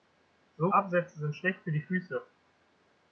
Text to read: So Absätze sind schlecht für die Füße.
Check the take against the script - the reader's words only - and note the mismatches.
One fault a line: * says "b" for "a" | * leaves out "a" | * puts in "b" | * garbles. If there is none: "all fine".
all fine